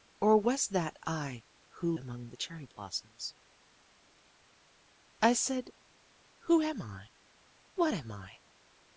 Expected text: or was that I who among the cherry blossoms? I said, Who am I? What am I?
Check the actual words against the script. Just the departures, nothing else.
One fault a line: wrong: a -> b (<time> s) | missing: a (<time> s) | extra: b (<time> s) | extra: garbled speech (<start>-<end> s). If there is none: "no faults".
no faults